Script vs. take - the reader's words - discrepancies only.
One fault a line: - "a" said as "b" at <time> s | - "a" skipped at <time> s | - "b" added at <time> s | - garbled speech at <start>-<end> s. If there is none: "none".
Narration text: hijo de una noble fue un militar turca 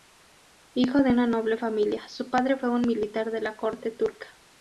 - "familia su padre" added at 1.6 s
- "de la corte" added at 3.3 s